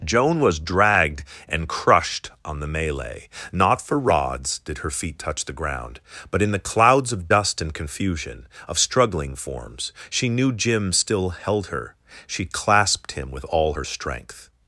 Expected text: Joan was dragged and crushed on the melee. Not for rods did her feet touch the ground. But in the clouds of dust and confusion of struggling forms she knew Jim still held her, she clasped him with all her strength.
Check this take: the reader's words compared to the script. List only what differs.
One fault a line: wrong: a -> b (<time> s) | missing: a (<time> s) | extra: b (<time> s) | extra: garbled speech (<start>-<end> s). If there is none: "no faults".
no faults